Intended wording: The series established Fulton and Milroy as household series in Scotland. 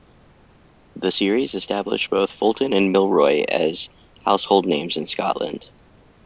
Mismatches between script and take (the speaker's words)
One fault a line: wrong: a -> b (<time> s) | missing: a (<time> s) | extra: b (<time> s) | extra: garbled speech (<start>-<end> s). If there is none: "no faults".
extra: both (2.1 s)
wrong: series -> names (4.7 s)